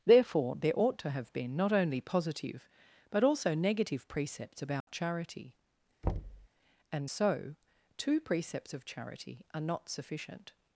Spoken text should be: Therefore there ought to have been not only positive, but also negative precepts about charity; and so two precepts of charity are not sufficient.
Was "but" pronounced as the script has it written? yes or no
yes